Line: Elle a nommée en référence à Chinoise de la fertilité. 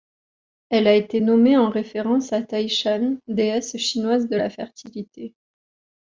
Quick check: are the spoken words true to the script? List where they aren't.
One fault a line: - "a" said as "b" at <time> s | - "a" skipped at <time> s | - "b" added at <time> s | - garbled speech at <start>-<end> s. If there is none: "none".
- "été" added at 0.9 s
- "Tai Shan déesse" added at 2.4 s